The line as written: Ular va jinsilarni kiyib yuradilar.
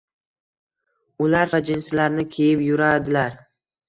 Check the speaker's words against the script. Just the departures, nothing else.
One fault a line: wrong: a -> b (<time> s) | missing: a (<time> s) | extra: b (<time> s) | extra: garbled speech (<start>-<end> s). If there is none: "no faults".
no faults